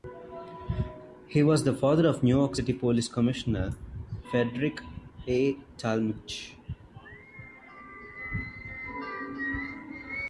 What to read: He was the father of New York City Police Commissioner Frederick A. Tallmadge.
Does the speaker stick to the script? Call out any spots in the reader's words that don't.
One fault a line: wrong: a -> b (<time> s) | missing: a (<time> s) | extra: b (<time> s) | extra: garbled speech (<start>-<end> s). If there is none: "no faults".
no faults